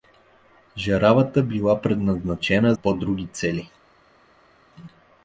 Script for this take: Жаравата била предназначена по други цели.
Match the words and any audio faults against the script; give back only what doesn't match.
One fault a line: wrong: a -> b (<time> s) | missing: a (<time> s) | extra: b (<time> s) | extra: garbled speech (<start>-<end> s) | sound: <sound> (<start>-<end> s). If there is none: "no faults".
no faults